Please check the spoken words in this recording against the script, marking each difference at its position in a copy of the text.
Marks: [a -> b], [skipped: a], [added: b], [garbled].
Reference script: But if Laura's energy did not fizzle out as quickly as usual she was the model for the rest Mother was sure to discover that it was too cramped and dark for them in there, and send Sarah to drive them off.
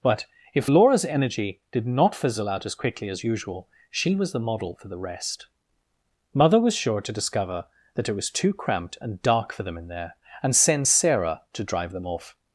But if Laura's energy did not fizzle out as quickly as usual she was the model for the rest Mother was sure to discover that it was too cramped and dark for them in there, and send Sarah to drive them off.